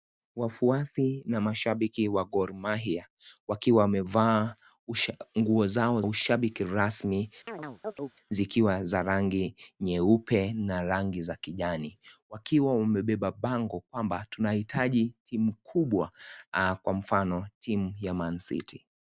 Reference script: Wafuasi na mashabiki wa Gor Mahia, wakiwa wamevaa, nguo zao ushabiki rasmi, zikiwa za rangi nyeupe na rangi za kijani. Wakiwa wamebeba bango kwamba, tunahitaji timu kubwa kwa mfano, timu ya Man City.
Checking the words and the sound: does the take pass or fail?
fail